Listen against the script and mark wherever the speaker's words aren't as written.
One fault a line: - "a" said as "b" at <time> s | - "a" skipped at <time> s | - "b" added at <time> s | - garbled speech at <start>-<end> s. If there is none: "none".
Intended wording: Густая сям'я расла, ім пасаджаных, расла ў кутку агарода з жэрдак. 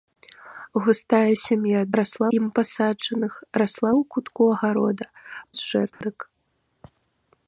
none